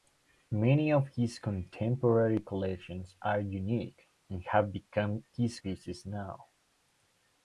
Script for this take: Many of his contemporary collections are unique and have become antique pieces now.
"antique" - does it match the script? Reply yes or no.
no